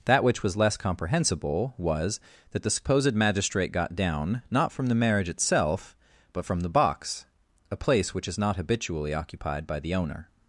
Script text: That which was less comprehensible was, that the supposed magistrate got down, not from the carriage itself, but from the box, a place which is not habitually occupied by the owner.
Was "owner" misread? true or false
false